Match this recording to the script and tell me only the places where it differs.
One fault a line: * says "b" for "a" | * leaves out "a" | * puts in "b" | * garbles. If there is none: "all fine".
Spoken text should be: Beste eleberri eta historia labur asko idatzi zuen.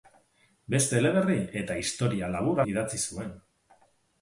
* leaves out "asko"